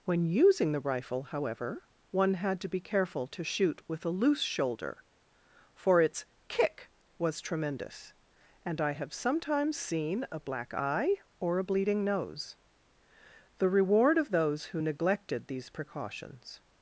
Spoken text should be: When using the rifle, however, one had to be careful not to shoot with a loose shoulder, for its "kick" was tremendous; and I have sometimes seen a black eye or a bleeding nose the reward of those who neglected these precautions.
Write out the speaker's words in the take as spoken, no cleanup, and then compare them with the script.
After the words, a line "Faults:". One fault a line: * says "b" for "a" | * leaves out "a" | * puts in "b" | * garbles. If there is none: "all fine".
When using the rifle, however, one had to be careful to shoot with a loose shoulder, for its "kick" was tremendous; and I have sometimes seen a black eye or a bleeding nose the reward of those who neglected these precautions.
Faults:
* leaves out "not"